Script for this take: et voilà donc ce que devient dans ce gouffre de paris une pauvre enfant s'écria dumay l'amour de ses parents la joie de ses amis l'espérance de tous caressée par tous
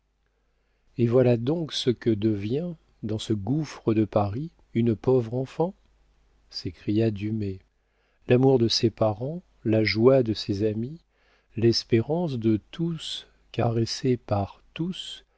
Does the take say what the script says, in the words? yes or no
yes